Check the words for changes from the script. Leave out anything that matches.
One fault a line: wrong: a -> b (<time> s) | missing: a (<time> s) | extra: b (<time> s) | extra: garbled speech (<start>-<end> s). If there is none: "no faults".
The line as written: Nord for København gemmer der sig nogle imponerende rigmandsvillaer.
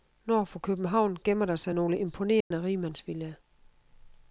no faults